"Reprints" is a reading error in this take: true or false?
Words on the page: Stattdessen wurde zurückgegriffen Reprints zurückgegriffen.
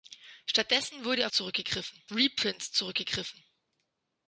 false